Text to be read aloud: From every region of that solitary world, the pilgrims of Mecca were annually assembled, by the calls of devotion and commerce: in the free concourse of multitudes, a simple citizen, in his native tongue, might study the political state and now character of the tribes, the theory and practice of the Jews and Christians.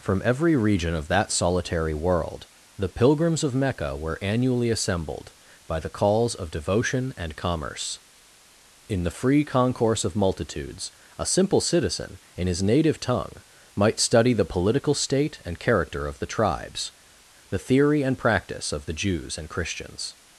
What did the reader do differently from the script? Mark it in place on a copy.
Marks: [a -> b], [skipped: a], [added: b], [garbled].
From every region of that solitary world, the pilgrims of Mecca were annually assembled, by the calls of devotion and commerce: in the free concourse of multitudes, a simple citizen, in his native tongue, might study the political state and [skipped: now] character of the tribes, the theory and practice of the Jews and Christians.